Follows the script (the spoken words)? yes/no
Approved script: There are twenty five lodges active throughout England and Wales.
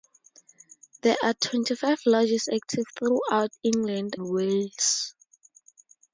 no